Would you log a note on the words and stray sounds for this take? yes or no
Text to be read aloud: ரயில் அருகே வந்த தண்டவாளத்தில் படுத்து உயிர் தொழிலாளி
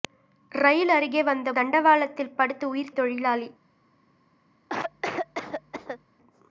yes